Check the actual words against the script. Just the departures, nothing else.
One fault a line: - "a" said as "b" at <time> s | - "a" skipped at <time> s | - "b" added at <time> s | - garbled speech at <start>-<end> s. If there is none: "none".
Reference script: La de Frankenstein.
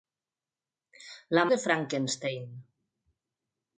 none